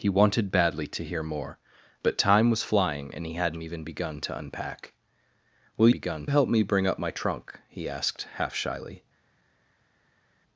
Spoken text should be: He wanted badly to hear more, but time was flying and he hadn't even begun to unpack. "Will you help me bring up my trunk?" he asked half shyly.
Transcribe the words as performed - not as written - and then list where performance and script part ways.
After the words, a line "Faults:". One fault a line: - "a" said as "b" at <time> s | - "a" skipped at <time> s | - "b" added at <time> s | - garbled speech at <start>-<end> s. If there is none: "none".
He wanted badly to hear more, but time was flying and he hadn't even begun to unpack. "Will begun help me bring up my trunk?" he asked half shyly.
Faults:
- "you" said as "begun" at 5.9 s